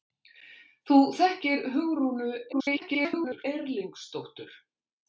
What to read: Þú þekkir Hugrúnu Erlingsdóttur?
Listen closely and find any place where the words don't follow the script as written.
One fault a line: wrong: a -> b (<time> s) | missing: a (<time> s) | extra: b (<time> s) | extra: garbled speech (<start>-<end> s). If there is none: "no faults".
extra: garbled speech (2.5-3.4 s)